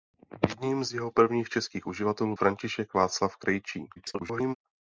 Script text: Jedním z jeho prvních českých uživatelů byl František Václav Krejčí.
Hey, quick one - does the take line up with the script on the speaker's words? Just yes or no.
no